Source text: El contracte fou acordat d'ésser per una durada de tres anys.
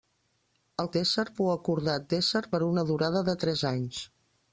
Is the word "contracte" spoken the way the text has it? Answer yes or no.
no